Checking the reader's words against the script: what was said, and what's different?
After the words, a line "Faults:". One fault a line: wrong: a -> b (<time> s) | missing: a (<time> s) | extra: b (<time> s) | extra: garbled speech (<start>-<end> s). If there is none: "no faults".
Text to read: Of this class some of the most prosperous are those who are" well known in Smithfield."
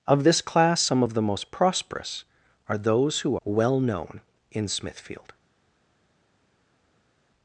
Of this class some of the most prosperous are those who" well known in Smithfield."
Faults:
missing: are (3.4 s)